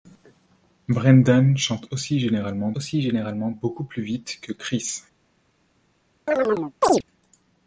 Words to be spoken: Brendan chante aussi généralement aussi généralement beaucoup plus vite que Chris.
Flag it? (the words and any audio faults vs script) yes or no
yes